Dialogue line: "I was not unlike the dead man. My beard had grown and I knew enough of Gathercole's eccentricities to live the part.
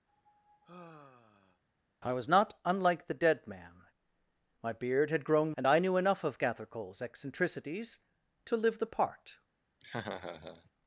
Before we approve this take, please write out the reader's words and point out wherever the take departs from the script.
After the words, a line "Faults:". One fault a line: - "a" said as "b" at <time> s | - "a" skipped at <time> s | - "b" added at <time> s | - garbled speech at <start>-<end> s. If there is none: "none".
"I was not unlike the dead man. My beard had grown and I knew enough of Gathercole's eccentricities to live the part.
Faults:
none